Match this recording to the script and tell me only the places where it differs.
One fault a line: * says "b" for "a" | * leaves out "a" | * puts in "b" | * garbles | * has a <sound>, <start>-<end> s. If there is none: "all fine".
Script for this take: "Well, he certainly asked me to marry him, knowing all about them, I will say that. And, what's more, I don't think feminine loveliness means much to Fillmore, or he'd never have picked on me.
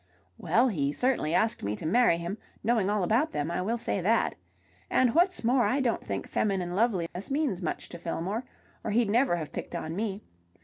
* has a dropout, 7.1-7.2 s